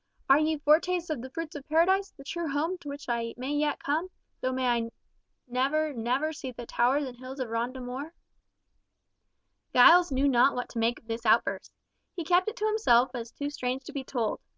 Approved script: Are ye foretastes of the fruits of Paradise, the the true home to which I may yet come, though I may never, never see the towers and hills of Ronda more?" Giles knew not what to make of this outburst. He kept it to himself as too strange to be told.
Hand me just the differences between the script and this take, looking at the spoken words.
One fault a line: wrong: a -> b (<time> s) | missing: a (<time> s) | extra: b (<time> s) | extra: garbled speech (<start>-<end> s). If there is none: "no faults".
missing: the (2.2 s)